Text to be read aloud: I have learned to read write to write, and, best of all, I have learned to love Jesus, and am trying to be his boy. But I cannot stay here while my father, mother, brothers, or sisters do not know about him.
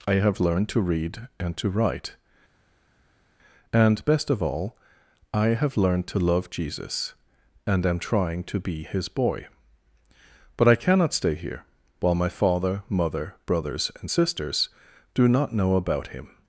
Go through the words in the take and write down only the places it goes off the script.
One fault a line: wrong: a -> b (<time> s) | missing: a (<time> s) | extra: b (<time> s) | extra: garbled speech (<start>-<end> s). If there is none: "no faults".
wrong: write -> and (1.4 s)
wrong: or -> and (14.0 s)